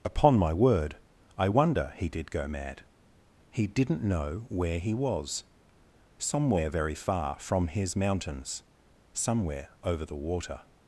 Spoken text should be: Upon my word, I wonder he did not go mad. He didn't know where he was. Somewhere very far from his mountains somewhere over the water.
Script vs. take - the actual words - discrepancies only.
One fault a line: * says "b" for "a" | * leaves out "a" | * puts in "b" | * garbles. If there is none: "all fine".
* leaves out "not"